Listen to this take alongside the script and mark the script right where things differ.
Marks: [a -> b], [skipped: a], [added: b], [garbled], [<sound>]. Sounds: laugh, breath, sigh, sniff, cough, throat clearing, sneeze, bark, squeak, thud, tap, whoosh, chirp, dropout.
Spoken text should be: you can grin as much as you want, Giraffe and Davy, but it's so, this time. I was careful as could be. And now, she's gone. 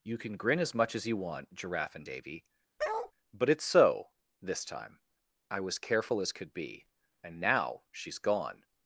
you can grin as much as you want, Giraffe and Davy, [bark] but it's so, this time. I was careful as could be. And now, she's gone.